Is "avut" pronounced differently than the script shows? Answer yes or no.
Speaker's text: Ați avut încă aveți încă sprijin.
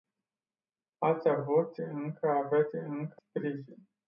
no